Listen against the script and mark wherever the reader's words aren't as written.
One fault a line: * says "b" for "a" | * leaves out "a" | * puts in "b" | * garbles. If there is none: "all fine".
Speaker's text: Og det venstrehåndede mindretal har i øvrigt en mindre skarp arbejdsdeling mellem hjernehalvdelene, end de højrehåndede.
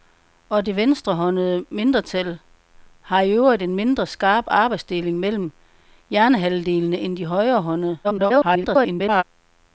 * garbles